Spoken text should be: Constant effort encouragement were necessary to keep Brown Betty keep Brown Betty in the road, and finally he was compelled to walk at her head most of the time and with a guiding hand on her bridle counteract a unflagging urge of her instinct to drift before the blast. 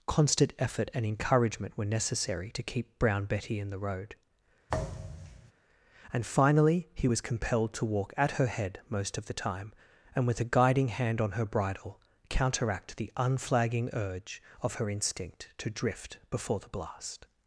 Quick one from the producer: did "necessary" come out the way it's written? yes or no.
yes